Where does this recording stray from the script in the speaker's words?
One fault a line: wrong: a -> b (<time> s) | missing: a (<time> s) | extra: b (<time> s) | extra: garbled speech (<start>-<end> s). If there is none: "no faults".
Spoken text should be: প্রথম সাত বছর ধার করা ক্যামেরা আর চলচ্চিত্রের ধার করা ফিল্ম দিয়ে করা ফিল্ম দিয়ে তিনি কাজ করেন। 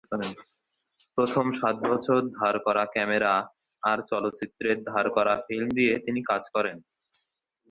missing: করা ফিল্ম দিয়ে (5.9 s)